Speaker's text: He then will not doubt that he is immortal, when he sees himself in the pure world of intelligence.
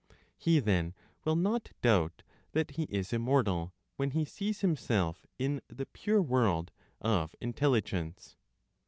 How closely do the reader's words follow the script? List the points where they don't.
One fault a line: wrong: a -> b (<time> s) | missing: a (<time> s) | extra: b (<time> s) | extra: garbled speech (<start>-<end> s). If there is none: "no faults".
no faults